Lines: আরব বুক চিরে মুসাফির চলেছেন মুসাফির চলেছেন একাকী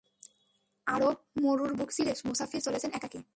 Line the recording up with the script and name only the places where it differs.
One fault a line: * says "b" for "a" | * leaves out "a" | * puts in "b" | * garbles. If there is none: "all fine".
* puts in "মরুর"
* leaves out "মুসাফির চলেছেন"